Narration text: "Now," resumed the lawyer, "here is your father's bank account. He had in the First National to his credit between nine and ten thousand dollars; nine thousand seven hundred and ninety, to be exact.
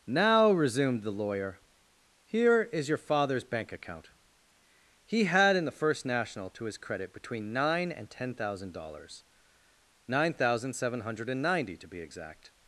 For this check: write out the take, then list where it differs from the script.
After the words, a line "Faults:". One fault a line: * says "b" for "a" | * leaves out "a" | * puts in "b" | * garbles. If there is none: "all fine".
"Now," resumed the lawyer, "here is your father's bank account. He had in the First National to his credit between nine and ten thousand dollars; nine thousand seven hundred and ninety, to be exact.
Faults:
all fine